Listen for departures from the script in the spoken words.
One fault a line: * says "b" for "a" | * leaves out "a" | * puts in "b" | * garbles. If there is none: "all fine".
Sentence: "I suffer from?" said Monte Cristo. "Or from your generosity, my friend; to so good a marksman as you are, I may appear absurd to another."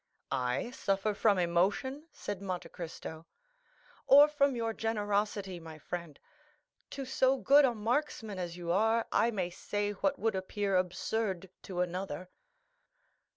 * puts in "emotion"
* puts in "say what would"